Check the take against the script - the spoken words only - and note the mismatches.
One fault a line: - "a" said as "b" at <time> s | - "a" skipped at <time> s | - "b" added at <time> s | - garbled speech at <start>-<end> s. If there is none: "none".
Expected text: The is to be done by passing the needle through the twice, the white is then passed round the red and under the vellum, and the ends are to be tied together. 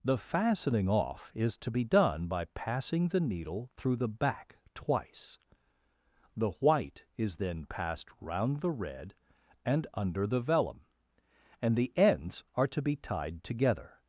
- "fastening off" added at 0.2 s
- "back" added at 4.1 s